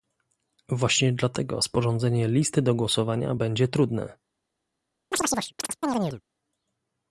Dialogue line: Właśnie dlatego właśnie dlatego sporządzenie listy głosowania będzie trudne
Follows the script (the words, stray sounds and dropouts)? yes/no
no